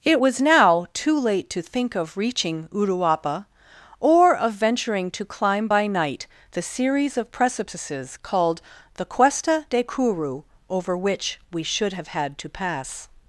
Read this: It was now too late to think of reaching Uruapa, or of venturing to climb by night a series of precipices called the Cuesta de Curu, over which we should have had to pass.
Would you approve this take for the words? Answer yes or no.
no